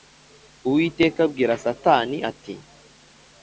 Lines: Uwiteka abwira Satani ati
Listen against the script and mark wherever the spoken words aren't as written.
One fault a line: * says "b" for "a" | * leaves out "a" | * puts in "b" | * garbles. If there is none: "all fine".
all fine